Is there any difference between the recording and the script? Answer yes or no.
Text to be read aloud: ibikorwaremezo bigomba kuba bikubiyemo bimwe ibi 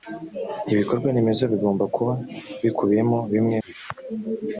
no